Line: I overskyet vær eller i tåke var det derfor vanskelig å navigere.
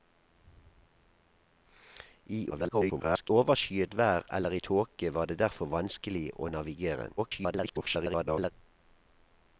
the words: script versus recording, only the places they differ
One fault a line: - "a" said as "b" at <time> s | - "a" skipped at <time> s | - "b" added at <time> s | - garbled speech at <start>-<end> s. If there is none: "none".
- garbled speech at 2.5-3.3 s
- garbled speech at 7.2-8.5 s